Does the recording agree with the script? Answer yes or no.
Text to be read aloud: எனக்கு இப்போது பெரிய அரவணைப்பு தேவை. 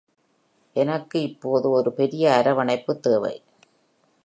no